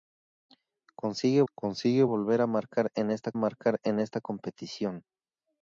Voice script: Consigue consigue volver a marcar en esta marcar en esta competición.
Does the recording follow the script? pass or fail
pass